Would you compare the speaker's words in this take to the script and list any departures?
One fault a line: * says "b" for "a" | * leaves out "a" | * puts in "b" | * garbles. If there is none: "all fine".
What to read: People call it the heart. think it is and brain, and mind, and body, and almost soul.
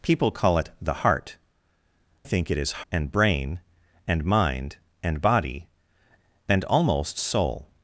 all fine